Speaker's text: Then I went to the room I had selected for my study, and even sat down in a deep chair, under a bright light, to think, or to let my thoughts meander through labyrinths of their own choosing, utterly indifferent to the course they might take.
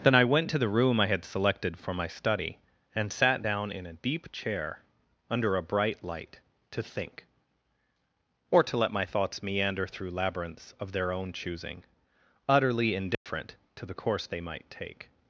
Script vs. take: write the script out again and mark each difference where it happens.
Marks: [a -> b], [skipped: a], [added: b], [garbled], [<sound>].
Then I went to the room I had selected for my study, and [skipped: even] sat down in a deep chair, under a bright light, to think, or to let my thoughts meander through labyrinths of their own choosing, utterly indifferent [dropout] to the course they might take.